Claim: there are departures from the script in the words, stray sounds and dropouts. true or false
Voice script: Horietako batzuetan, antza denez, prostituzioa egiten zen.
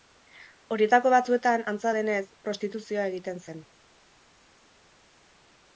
false